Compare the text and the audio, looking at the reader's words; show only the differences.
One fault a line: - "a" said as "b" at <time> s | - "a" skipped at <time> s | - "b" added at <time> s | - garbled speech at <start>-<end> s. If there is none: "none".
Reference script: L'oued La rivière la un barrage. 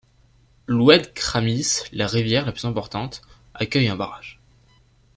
- "Kramis" added at 1.1 s
- "plus importante accueille" added at 2.5 s